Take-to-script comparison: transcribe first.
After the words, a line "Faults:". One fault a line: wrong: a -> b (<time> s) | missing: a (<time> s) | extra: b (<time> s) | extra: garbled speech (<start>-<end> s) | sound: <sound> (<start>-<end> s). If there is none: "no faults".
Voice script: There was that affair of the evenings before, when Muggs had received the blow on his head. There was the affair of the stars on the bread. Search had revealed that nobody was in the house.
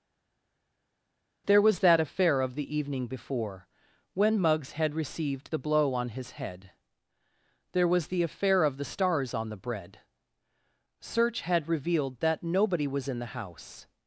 There was that affair of the evening before, when Muggs had received the blow on his head. There was the affair of the stars on the bread. Search had revealed that nobody was in the house.
Faults:
wrong: evenings -> evening (2.8 s)